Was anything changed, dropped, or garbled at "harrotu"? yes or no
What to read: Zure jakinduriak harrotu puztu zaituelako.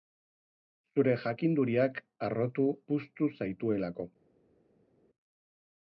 no